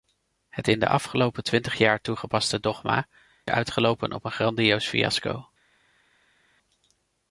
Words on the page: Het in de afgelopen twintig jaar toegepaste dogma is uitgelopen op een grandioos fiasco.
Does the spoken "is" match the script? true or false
false